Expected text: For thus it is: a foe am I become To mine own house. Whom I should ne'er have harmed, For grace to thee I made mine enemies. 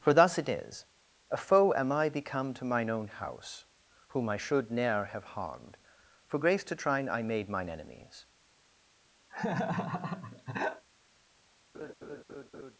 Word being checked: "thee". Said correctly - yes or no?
no